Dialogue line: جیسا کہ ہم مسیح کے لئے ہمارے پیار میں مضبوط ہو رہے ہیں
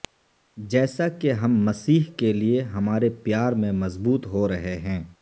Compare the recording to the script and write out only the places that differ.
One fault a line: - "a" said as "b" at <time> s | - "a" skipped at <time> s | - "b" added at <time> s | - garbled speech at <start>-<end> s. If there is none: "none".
none